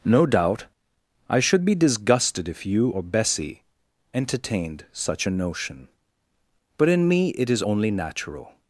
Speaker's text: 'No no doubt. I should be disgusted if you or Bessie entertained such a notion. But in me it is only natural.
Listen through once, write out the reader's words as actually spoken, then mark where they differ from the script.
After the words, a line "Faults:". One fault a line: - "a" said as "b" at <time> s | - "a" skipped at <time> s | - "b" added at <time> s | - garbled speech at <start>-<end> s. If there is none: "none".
'No doubt. I should be disgusted if you or Bessie entertained such a notion. But in me it is only natural.
Faults:
- "no" skipped at 0.2 s